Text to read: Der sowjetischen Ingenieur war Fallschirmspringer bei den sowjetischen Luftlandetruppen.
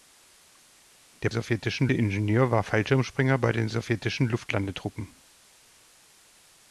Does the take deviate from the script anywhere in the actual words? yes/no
no